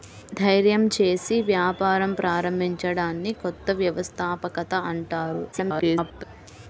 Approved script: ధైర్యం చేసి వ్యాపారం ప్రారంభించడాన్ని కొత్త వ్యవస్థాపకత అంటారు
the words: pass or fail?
fail